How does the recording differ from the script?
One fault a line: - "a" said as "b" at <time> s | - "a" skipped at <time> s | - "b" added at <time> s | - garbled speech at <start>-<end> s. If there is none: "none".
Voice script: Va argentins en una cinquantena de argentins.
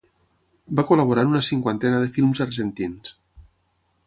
- "argentins" said as "col·laborar" at 0.9 s
- "films" added at 2.2 s